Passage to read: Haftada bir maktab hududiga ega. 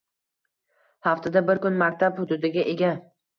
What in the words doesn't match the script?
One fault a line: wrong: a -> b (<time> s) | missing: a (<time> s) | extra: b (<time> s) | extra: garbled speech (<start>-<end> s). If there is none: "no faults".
extra: kun (1.7 s)